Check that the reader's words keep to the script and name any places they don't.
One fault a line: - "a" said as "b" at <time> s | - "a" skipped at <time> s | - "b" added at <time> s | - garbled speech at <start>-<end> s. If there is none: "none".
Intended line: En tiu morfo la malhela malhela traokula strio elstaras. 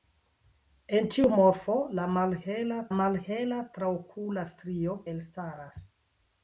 none